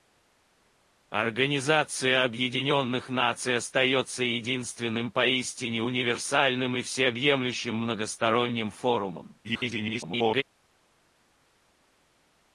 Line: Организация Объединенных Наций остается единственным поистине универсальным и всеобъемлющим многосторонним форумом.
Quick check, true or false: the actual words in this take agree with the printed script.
false